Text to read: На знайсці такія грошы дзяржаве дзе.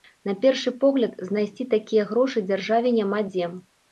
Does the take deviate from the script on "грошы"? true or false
false